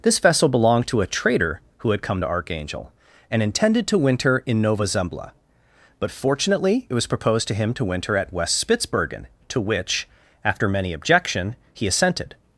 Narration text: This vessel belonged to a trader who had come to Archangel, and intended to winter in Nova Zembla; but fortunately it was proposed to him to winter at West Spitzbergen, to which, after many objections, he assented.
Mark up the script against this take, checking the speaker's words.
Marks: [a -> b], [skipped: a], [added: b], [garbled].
This vessel belonged to a trader who had come to Archangel, and intended to winter in Nova Zembla; but fortunately it was proposed to him to winter at West Spitzbergen, to which, after many [objections, -> objection] he assented.